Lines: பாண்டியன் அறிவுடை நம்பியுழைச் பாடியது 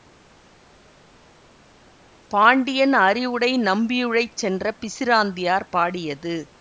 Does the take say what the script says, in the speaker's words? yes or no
no